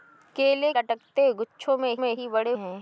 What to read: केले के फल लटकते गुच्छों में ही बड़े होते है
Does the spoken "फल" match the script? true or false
false